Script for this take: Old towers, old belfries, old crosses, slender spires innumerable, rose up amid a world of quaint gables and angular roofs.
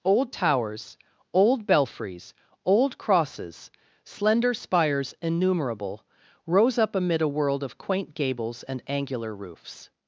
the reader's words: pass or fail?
pass